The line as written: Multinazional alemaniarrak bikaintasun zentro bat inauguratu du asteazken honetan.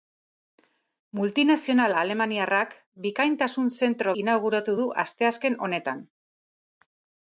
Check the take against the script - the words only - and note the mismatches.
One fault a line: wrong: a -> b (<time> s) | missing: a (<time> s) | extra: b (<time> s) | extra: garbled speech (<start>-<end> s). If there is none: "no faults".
missing: bat (4.2 s)